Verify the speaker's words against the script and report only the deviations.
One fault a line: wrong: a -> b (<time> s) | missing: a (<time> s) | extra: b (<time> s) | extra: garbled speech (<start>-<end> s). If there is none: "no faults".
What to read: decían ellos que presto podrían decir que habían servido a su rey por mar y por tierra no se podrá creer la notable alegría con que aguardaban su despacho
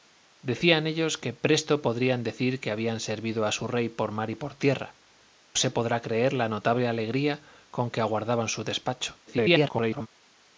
missing: no (5.0 s)
extra: garbled speech (9.3-10.1 s)